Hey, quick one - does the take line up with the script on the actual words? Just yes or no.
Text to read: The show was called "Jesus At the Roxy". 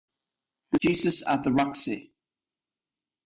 no